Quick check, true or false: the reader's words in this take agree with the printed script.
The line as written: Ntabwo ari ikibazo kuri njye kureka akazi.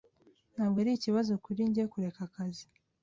true